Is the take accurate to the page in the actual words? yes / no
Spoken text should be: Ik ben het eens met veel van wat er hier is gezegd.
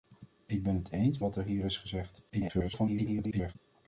no